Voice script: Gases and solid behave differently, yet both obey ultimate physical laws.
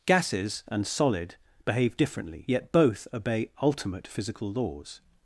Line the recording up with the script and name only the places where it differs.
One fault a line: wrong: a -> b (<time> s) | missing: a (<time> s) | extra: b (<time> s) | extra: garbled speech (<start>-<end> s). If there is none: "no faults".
no faults